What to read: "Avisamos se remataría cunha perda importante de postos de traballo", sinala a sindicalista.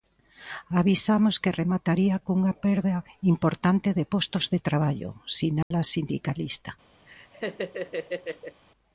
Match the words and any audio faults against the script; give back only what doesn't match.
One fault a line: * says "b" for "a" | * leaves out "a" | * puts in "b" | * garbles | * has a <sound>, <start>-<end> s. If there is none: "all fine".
* says "que" for "se"
* has a dropout, 5.6-5.7 s
* has a laugh, 7.1-8.6 s